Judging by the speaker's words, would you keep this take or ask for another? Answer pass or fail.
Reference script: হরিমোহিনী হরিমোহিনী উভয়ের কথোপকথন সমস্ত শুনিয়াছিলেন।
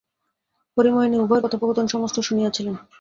fail